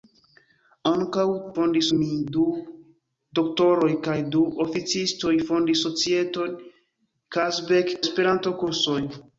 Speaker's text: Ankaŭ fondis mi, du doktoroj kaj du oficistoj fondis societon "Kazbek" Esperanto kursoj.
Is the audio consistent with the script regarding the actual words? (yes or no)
yes